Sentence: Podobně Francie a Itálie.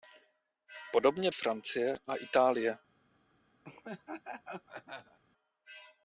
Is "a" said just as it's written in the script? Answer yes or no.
yes